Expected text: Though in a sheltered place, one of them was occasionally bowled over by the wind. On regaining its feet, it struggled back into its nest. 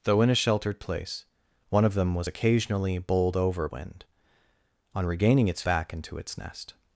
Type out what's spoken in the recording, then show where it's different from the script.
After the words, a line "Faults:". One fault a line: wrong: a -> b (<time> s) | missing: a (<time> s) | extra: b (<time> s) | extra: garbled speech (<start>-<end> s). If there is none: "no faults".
Though in a sheltered place, one of them was occasionally bowled over wind. On regaining its back into its nest.
Faults:
missing: by the (3.7 s)
missing: feet it struggled (5.6 s)